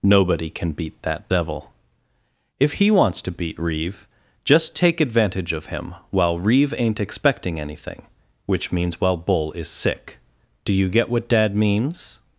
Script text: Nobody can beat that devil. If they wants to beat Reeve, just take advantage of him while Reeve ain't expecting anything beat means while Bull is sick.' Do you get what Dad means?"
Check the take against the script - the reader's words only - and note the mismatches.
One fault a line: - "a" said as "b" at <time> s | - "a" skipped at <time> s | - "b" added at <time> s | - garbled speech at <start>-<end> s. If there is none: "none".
- "they" said as "he" at 2.7 s
- "beat" said as "which" at 8.4 s